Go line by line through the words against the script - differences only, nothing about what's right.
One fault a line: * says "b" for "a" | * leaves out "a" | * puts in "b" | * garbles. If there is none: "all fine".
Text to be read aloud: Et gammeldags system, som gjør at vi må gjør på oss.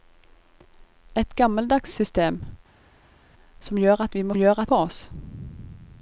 all fine